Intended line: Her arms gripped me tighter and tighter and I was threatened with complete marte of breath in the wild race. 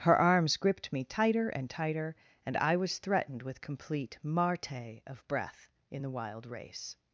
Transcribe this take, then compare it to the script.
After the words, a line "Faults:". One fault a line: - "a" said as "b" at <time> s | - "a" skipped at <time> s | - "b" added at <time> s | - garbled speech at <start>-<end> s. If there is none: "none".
Her arms gripped me tighter and tighter and I was threatened with complete marte of breath in the wild race.
Faults:
none